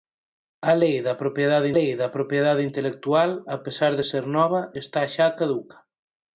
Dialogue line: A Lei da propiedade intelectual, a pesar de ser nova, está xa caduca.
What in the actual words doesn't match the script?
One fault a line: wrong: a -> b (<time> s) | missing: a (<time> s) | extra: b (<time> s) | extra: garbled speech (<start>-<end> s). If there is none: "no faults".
extra: Lei da propiedade (1.7 s)